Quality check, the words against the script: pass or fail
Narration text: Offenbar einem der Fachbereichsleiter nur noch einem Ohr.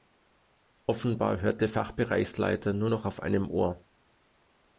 fail